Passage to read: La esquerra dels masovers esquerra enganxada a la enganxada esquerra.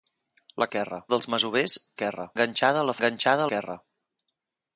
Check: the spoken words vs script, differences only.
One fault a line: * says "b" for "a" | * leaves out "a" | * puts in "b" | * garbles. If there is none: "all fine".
all fine